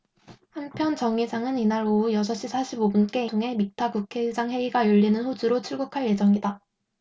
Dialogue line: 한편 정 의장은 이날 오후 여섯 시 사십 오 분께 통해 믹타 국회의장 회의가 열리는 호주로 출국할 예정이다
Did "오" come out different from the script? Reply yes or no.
no